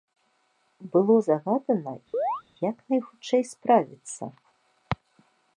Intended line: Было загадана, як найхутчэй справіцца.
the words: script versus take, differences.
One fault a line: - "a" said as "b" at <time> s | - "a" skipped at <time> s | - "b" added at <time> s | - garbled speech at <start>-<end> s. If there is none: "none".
none